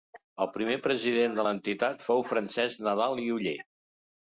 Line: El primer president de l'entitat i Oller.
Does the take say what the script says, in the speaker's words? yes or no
no